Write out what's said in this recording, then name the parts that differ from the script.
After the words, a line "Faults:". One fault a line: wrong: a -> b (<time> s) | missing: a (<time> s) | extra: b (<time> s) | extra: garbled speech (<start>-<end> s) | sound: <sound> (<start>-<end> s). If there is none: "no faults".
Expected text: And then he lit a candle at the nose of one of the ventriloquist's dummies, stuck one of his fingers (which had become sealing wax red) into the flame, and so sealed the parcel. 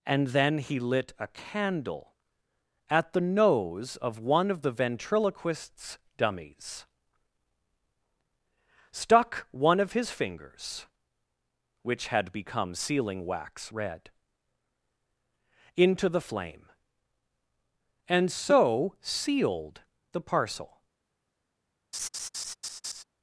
And then he lit a candle at the nose of one of the ventriloquist's dummies, stuck one of his fingers (which had become sealing wax red) into the flame, and so sealed the parcel.
Faults:
sound: laugh (21.9-23.0 s)